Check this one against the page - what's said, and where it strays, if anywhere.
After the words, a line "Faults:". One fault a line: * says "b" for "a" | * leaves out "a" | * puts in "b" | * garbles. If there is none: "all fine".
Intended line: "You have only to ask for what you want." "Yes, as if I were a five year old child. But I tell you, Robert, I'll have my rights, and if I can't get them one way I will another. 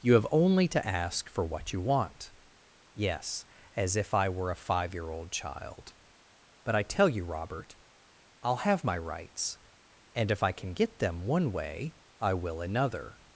"You have only to ask for what you want." "Yes, as if I were a five year old child. But I tell you, Robert, I'll have my rights, and if I can get them one way I will another.
Faults:
* says "can" for "can't"